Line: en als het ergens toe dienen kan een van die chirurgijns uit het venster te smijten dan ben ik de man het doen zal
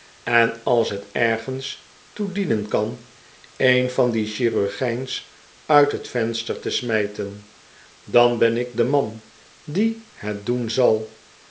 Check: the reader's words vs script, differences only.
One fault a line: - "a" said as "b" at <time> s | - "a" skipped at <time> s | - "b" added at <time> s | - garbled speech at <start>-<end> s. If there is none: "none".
- "die" added at 9.6 s